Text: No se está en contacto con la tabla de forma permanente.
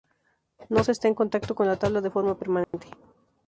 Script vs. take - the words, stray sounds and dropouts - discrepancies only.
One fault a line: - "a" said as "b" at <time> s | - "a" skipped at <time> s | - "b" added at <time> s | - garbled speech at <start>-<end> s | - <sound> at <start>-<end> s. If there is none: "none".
- dropout at 2.6-2.7 s